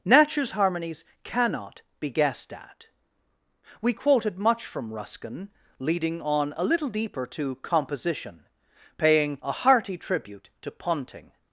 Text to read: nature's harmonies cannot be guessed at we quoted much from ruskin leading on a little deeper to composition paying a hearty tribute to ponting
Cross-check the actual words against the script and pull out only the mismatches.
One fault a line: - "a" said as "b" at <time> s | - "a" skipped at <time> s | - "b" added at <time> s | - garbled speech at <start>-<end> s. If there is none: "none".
none